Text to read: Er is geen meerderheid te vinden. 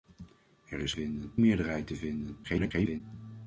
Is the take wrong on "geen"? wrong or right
wrong